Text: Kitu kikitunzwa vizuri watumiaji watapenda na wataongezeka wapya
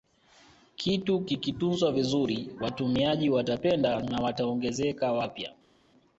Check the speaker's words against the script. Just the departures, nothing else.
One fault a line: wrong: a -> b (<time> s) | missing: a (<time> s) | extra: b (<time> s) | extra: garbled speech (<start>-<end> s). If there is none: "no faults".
no faults